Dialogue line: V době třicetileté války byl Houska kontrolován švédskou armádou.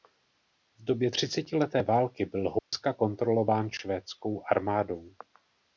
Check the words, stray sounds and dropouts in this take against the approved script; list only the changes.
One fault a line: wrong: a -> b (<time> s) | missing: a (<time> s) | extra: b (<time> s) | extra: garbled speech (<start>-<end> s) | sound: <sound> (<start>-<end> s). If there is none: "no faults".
sound: dropout (2.6-2.7 s)